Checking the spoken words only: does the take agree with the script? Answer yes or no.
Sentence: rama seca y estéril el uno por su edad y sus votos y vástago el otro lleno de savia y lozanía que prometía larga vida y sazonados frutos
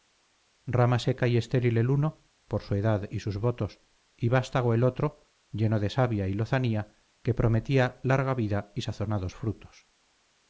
yes